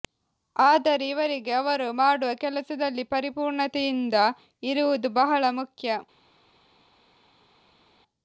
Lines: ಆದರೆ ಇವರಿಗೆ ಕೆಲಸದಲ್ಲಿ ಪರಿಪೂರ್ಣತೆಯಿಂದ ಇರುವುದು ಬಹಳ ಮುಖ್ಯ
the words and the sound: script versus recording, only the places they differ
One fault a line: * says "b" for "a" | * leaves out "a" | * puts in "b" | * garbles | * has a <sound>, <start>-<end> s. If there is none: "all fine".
* puts in "ಅವರು ಮಾಡುವ"